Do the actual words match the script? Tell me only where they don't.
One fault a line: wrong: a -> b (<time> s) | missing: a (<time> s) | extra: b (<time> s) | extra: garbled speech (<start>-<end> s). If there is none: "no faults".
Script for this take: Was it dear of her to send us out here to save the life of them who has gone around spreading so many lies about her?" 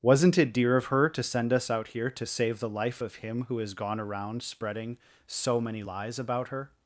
wrong: Was -> Wasn't (0.0 s)
wrong: them -> him (3.2 s)